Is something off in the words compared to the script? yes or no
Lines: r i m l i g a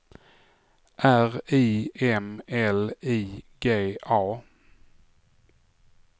no